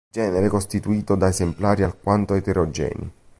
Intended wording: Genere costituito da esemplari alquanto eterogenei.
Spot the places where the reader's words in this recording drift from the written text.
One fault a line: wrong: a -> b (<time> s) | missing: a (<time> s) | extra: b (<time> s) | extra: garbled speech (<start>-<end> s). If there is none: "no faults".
no faults